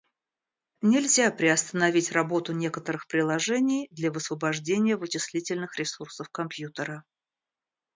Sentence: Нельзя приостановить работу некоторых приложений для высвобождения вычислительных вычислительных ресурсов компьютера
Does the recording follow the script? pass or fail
fail